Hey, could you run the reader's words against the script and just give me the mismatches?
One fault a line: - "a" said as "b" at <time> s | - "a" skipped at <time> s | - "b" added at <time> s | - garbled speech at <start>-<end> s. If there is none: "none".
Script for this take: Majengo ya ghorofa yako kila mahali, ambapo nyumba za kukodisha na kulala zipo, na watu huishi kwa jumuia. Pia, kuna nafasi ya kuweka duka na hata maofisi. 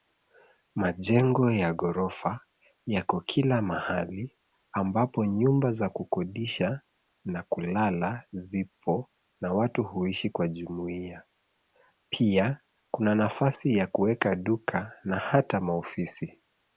none